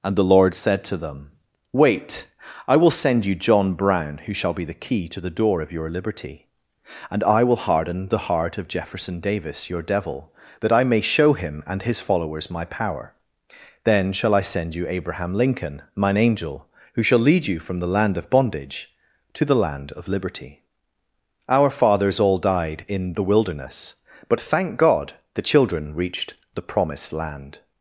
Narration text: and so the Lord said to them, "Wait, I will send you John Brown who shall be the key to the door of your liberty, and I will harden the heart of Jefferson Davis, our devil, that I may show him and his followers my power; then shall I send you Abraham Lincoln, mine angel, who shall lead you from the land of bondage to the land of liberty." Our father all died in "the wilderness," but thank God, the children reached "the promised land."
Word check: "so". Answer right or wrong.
wrong